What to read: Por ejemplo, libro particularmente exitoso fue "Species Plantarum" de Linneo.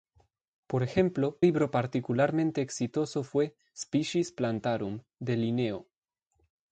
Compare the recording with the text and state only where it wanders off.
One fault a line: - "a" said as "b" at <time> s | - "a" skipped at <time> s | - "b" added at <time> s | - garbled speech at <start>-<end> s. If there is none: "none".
none